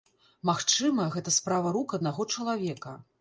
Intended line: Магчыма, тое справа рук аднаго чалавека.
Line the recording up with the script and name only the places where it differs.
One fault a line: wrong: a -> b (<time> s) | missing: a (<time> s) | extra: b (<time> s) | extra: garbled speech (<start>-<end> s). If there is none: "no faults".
wrong: тое -> гэта (1.2 s)